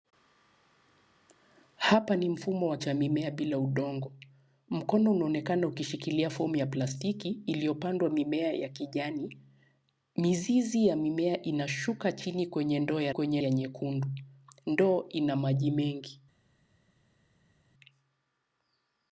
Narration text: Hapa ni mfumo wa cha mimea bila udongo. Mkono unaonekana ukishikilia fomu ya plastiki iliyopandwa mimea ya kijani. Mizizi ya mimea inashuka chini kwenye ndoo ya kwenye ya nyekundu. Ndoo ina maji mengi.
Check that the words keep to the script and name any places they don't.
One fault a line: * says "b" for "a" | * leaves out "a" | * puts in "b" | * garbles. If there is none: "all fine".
all fine